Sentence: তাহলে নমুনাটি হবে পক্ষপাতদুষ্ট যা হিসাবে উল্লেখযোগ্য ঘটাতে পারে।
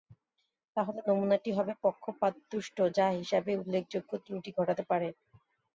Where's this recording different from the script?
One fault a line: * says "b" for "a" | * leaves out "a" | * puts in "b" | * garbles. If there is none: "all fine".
* puts in "ত্রুটি"